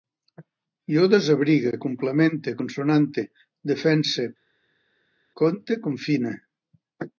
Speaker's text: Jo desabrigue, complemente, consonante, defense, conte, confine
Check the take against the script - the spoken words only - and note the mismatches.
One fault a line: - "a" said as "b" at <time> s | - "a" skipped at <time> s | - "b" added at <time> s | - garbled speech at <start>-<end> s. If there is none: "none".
none